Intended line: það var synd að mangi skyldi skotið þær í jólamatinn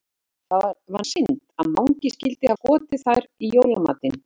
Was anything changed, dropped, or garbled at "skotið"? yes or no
no